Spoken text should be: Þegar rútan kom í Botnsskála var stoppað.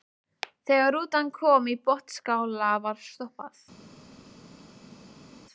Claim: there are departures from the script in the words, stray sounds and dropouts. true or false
false